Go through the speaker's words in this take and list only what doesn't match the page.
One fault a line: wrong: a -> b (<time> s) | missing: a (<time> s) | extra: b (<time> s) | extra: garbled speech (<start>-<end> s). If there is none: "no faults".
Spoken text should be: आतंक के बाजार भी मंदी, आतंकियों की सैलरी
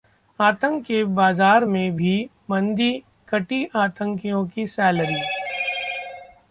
extra: में (1.6 s)
extra: कटी (3.3 s)